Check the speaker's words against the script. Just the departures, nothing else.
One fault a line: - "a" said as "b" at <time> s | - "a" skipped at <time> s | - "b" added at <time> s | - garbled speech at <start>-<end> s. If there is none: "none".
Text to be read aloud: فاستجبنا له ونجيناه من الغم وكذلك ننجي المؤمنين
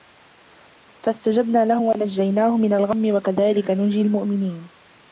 none